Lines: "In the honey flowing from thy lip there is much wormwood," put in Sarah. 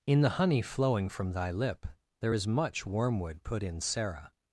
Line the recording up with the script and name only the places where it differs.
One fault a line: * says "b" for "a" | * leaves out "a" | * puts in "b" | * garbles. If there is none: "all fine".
all fine